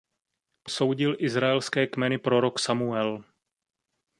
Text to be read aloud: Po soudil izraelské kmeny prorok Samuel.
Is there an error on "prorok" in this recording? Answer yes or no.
no